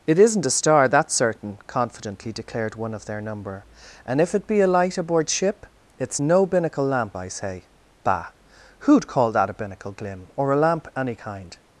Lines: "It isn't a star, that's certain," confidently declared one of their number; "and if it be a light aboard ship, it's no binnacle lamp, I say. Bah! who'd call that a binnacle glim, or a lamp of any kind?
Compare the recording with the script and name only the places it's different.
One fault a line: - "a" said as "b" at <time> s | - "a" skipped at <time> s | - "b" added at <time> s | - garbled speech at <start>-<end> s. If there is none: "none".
- "of" skipped at 10.9 s